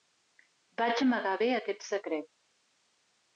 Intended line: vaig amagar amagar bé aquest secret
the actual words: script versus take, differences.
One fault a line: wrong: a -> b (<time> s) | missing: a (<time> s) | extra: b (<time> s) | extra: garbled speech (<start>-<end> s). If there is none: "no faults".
missing: amagar (1.3 s)